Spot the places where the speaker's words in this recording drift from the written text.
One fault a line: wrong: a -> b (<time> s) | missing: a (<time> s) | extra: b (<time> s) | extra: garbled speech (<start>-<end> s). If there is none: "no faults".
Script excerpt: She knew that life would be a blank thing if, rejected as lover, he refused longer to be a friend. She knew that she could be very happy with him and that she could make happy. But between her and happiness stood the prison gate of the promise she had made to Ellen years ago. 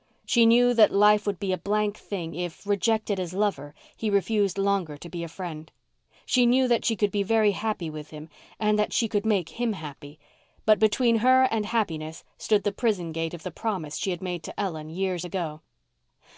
extra: him (9.5 s)